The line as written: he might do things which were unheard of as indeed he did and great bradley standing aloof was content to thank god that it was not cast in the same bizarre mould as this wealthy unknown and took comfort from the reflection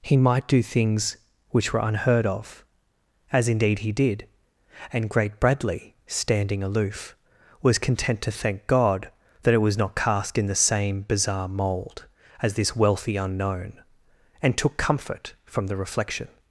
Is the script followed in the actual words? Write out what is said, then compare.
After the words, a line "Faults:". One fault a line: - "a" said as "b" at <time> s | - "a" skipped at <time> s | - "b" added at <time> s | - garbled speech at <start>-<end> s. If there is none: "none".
he might do things which were unheard of as indeed he did and great bradley standing aloof was content to thank god that it was not cast in the same bizarre mould as this wealthy unknown and took comfort from the reflection
Faults:
none